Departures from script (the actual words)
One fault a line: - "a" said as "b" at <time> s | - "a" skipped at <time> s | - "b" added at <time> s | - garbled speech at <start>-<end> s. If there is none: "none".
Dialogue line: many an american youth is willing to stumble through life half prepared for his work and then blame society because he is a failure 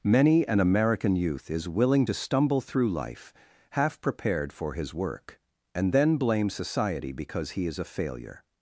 none